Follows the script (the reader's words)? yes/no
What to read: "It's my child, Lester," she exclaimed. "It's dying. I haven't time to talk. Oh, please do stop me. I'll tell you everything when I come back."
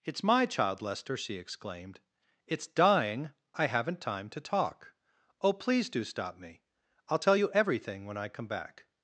yes